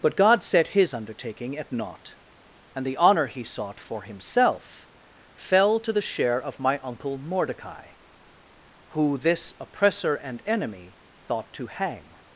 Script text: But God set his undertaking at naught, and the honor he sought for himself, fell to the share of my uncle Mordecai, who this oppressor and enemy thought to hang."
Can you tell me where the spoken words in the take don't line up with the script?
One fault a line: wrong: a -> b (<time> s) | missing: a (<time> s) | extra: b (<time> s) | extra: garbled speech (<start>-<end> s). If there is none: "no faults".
no faults